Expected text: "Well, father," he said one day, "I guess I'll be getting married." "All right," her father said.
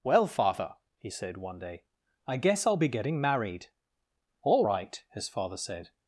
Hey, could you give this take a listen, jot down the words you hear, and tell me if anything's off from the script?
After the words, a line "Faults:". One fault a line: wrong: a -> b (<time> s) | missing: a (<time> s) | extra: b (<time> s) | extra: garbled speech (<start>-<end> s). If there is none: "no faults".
"Well, father," he said one day, "I guess I'll be getting married." "All right," his father said.
Faults:
wrong: her -> his (5.1 s)